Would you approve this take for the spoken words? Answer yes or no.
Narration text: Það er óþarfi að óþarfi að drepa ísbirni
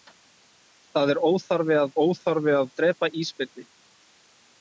yes